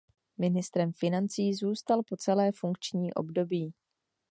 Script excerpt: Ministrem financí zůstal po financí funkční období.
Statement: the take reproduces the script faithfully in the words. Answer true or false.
false